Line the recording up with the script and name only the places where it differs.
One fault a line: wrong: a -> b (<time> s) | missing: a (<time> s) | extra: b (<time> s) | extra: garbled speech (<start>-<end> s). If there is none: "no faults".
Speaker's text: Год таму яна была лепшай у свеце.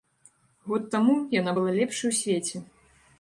no faults